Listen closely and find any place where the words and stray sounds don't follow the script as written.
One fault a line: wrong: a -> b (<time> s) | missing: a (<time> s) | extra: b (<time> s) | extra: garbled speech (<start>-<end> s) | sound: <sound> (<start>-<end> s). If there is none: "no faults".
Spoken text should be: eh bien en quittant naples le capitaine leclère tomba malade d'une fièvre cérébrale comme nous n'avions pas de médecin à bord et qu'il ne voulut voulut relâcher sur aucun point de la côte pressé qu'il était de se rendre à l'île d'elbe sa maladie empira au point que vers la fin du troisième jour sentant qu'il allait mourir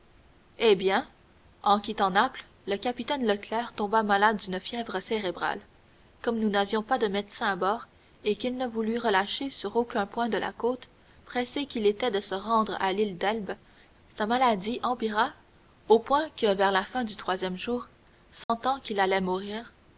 missing: voulut (9.0 s)
sound: dropout (18.4-18.5 s)